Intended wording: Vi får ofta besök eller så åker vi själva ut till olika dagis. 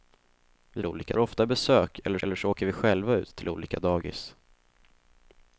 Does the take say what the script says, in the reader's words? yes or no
no